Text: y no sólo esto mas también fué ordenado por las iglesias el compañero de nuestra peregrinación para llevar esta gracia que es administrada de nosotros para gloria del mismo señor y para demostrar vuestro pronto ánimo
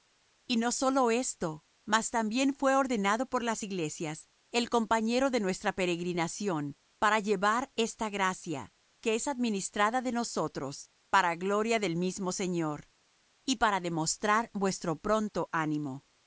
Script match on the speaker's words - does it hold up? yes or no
yes